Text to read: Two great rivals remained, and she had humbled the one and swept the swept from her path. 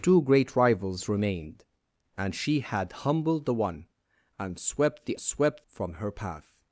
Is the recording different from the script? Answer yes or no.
no